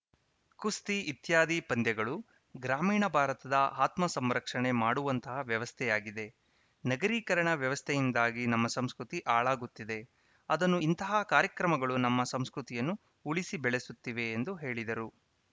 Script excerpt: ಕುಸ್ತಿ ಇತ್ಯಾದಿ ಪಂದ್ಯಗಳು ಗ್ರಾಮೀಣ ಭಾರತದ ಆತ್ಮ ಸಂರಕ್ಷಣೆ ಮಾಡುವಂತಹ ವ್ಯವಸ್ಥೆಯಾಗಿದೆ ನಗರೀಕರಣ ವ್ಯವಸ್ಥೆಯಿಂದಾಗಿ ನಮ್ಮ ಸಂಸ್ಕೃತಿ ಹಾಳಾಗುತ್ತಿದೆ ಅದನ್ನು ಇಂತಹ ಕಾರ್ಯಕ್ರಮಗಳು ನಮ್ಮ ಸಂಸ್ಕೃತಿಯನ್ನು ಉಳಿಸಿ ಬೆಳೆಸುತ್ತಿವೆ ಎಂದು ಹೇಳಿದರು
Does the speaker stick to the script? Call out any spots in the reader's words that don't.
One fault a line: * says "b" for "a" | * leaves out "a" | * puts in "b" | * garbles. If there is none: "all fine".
all fine